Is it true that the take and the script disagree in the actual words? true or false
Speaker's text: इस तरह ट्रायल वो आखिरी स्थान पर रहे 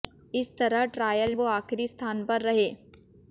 false